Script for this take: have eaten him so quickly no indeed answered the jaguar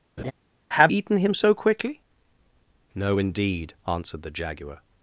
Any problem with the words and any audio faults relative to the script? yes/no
yes